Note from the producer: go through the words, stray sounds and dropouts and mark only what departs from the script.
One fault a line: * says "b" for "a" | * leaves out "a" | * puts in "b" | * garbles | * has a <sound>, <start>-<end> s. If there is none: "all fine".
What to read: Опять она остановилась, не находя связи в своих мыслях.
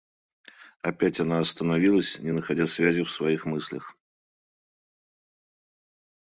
all fine